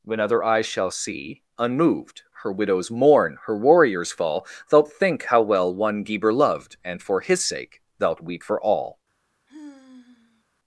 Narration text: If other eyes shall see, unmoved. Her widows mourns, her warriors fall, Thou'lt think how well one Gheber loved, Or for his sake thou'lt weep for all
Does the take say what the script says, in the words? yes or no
no